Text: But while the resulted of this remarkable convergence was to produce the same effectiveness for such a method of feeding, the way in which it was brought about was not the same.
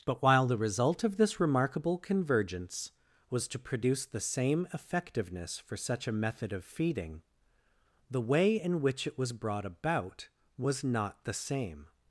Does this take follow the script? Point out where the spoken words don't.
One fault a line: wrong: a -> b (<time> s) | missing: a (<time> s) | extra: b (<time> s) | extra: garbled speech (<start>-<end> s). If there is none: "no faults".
wrong: resulted -> result (0.6 s)